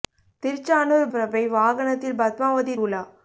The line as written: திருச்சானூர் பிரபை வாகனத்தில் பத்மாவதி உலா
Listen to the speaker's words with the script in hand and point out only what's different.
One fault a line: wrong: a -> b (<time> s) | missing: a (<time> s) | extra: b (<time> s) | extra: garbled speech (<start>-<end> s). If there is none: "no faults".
no faults